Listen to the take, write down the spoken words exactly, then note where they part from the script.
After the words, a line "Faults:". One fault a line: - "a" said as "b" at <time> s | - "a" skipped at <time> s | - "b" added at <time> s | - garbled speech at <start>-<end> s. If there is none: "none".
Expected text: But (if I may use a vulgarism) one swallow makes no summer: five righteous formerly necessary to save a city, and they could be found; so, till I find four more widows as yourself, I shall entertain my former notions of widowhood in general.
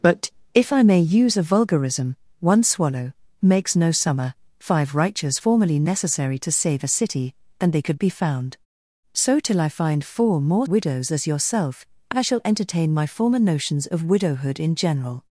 But (if I may use a vulgarism) one swallow makes no summer: five righteous formerly necessary to save a city, and they could be found; so, till I find four more widows as yourself, I shall entertain my former notions of widowhood in general.
Faults:
none